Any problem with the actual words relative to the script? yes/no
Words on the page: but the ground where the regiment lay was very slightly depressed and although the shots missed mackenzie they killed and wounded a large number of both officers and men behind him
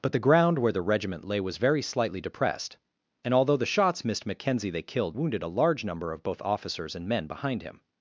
yes